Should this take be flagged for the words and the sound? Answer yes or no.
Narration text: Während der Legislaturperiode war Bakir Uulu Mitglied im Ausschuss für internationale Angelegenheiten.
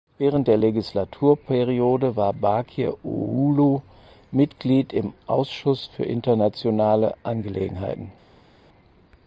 no